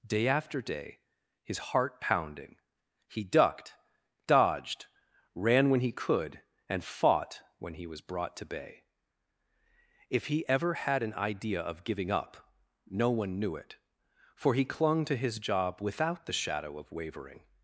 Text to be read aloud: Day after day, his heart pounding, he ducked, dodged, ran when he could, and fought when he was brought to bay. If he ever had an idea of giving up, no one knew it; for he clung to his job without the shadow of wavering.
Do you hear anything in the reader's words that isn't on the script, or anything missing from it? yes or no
no